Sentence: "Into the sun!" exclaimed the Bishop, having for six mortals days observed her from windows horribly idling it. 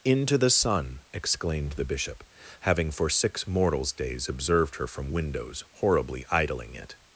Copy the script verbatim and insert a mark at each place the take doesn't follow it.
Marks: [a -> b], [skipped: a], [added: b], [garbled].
"Into the sun!" exclaimed the Bishop, having for six mortals days observed her from windows horribly idling it.